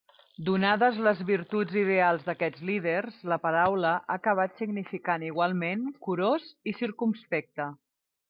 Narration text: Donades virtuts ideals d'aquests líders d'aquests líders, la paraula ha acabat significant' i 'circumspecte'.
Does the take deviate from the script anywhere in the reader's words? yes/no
yes